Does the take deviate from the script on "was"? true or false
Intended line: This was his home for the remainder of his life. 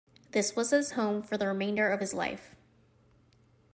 false